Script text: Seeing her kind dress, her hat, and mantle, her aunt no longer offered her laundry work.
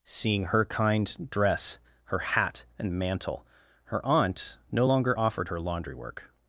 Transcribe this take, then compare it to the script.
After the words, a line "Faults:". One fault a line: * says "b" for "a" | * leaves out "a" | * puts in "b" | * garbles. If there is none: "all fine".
Seeing her kind dress, her hat, and mantle, her aunt no longer offered her laundry work.
Faults:
all fine